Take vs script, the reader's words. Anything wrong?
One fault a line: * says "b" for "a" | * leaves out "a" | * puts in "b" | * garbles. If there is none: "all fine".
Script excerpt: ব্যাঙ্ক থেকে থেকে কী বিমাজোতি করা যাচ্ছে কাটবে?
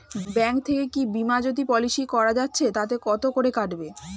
* leaves out "থেকে"
* puts in "পলিসি"
* puts in "তাতে কত করে"